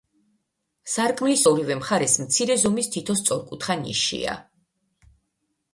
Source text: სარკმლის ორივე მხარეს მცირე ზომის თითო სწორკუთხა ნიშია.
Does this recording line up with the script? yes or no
yes